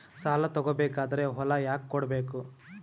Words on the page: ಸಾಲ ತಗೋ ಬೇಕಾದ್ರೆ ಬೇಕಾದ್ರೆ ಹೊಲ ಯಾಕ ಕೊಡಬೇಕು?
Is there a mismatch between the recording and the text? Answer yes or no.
yes